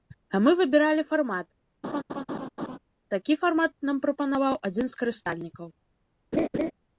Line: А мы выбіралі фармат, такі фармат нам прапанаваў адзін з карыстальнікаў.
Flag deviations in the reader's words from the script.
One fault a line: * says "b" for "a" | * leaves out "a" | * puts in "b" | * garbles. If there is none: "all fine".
all fine